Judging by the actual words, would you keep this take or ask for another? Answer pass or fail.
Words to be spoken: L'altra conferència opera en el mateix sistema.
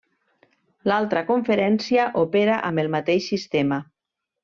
fail